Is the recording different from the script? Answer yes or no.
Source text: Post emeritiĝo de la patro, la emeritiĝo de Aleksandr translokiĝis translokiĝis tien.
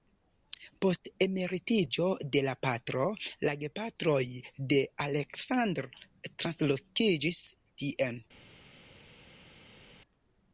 yes